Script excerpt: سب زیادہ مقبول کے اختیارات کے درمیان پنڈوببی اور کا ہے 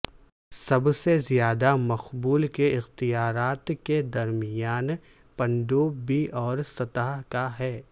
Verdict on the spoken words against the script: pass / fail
fail